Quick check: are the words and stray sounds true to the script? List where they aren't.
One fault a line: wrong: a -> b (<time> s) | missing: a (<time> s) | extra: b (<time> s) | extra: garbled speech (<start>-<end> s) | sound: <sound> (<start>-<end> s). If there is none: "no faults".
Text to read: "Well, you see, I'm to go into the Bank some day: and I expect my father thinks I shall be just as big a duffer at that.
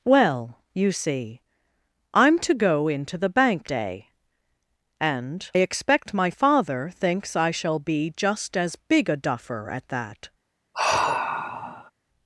missing: some (3.7 s)
missing: I (5.5 s)
sound: sigh (10.7-11.9 s)